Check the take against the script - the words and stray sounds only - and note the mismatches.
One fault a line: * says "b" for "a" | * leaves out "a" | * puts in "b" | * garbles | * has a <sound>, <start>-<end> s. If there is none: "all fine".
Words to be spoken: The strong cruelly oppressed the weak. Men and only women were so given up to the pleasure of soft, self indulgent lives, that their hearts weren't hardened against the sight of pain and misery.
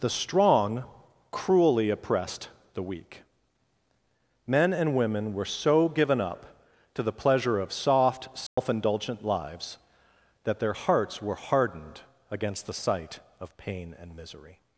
* leaves out "only"
* has a dropout, 8.5-8.6 s
* says "were" for "weren't"